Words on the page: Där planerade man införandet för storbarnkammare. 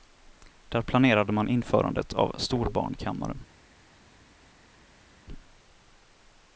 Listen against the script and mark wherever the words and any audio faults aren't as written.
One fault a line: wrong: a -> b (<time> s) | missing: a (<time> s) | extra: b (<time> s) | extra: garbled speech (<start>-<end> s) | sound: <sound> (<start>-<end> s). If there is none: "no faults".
wrong: för -> av (2.1 s)